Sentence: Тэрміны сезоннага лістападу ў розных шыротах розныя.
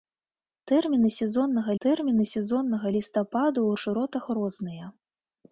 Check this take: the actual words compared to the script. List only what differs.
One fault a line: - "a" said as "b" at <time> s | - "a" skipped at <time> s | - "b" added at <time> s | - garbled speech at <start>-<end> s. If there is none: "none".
- "тэрміны сезоннага" added at 1.8 s
- "розных" skipped at 3.7 s